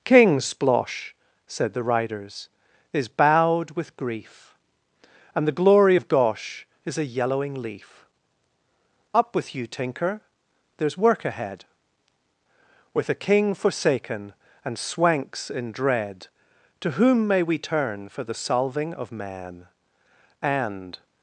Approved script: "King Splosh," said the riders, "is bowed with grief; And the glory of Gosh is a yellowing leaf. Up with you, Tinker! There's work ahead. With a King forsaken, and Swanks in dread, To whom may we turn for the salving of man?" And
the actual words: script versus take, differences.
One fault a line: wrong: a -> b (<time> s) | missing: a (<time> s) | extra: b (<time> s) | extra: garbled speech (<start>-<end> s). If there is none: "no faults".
no faults